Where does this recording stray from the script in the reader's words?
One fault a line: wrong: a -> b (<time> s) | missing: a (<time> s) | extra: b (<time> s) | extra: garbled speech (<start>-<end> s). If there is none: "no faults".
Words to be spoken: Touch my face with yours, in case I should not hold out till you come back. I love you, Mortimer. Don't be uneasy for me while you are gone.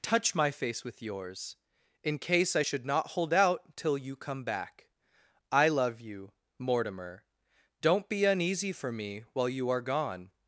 no faults